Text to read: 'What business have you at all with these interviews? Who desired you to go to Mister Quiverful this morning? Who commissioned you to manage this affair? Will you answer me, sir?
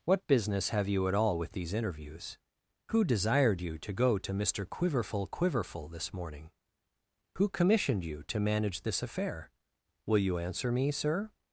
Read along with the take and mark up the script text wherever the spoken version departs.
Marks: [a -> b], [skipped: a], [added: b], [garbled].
'What business have you at all with these interviews? Who desired you to go to Mister Quiverful [added: Quiverful] this morning? Who commissioned you to manage this affair? Will you answer me, sir?